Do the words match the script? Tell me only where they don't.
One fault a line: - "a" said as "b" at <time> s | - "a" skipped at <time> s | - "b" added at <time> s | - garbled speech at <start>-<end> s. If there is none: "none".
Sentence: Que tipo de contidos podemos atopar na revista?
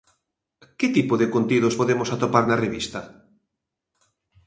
none